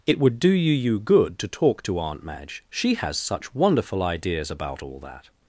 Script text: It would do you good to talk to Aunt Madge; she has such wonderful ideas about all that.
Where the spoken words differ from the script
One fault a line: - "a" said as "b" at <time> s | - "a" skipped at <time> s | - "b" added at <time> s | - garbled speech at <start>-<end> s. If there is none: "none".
- "you" added at 0.7 s